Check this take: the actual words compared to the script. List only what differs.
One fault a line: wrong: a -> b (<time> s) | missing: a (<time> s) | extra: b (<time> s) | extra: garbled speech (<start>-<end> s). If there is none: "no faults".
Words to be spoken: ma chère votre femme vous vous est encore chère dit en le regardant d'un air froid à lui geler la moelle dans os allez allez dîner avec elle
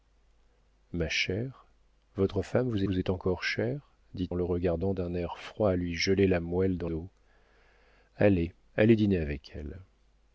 no faults